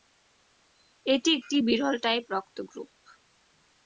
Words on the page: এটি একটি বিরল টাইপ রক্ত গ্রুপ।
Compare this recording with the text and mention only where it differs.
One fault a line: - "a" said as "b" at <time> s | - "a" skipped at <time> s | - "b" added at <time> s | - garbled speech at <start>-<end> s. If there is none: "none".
none